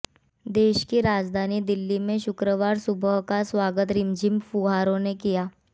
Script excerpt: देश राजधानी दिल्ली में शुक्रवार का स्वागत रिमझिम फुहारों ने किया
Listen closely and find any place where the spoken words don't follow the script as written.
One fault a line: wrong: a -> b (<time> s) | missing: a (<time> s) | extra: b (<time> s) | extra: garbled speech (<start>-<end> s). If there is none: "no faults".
extra: की (0.9 s)
extra: सुबह (2.8 s)